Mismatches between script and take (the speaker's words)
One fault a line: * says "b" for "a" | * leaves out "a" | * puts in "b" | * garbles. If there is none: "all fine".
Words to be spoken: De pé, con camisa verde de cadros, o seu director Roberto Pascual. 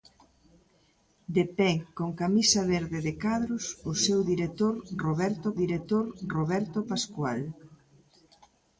* puts in "director Roberto"